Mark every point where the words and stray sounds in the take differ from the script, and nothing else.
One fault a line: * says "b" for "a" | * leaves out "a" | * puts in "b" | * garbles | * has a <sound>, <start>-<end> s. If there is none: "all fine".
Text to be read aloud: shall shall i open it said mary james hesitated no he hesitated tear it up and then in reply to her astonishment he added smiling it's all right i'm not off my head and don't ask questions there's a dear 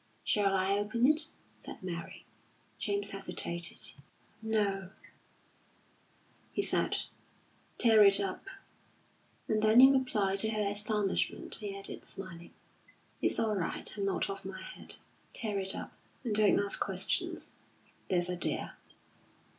* leaves out "shall"
* says "said" for "hesitated"
* puts in "tear it up"